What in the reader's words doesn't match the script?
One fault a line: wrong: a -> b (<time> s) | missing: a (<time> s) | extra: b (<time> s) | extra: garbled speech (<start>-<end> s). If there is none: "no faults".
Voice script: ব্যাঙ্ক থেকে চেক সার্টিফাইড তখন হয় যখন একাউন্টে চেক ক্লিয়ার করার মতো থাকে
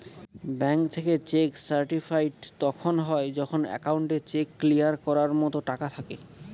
extra: টাকা (5.7 s)